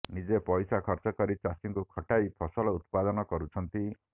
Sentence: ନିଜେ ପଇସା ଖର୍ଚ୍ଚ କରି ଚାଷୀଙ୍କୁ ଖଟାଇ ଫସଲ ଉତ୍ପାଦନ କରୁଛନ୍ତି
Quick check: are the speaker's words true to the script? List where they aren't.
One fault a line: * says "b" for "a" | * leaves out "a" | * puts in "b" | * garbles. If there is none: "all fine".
all fine